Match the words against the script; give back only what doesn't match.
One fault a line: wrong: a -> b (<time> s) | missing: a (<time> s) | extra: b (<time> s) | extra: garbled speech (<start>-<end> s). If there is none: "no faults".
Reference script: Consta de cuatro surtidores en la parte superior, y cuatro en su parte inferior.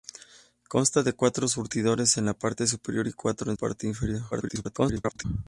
missing: su (3.6 s)
extra: garbled speech (4.3-5.2 s)